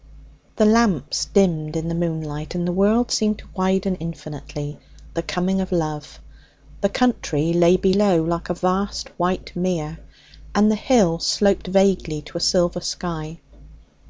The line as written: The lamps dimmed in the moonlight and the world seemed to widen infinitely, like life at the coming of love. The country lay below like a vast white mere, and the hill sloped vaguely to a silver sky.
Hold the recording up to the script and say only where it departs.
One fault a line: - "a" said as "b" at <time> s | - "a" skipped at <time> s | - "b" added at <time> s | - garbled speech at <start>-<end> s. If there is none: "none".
- "like life at" skipped at 4.8 s